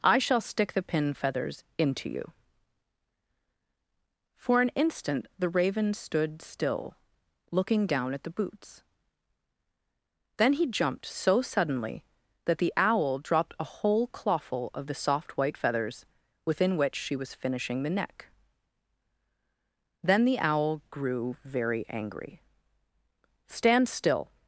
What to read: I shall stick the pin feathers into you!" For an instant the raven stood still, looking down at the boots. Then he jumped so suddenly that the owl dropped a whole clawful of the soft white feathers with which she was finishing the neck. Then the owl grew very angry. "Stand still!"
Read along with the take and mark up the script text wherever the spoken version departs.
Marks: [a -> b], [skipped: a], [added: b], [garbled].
I shall stick the pin feathers into you!" For an instant the raven stood still, looking down at the boots. Then he jumped so suddenly that the owl dropped a whole clawful of the soft white feathers [with -> within] which she was finishing the neck. Then the owl grew very angry. "Stand still!"